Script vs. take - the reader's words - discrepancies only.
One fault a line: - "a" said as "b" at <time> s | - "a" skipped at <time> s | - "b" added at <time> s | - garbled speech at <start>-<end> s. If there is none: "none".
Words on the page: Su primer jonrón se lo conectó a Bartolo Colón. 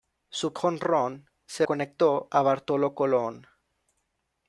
- "primer" skipped at 0.6 s
- "lo" skipped at 1.7 s